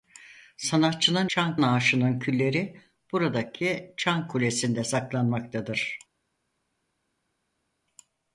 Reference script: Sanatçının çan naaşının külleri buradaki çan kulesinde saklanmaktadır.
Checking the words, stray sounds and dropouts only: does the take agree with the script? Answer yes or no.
yes